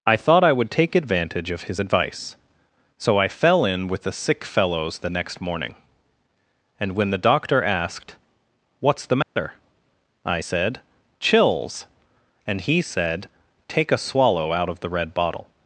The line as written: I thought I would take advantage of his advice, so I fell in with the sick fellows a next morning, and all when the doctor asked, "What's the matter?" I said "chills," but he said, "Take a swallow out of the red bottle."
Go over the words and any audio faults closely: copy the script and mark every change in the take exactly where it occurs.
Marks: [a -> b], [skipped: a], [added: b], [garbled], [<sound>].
I thought I would take advantage of his advice, so I fell in with the sick fellows [a -> the] next morning, and [skipped: all] when the doctor asked, "What's the matter?" [dropout] I said "chills," [but -> and] he said, "Take a swallow out of the red bottle."